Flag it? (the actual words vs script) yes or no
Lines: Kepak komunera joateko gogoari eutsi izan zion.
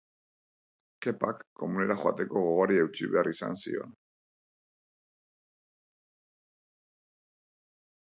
yes